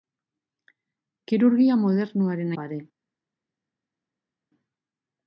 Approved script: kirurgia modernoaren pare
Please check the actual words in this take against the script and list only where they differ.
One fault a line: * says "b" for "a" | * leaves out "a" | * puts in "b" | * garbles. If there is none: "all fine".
all fine